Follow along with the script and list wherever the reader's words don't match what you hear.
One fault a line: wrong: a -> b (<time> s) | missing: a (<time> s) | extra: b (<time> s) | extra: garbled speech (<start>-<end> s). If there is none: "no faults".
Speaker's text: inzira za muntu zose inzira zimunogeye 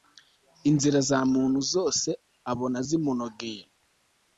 wrong: inzira -> abona (2.5 s)